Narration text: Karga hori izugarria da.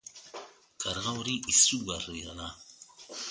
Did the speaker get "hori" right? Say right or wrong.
right